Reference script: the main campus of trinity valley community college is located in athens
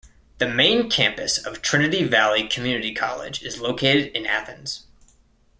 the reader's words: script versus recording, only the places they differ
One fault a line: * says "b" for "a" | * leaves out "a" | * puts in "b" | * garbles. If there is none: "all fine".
all fine